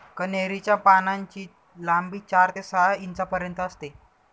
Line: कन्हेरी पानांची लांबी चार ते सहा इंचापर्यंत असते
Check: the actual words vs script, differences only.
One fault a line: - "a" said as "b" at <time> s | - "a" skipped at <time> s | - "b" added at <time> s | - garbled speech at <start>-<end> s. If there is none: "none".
- "च्या" added at 0.6 s